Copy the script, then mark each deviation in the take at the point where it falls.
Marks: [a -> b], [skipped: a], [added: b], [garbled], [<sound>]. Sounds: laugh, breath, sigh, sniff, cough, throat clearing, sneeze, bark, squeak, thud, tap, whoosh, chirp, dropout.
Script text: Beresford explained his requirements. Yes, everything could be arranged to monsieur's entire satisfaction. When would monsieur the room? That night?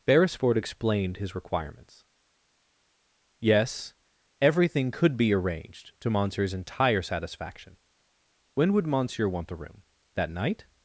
Beresford explained his requirements. Yes, everything could be arranged to monsieur's entire satisfaction. When would monsieur [added: want] the room? That night?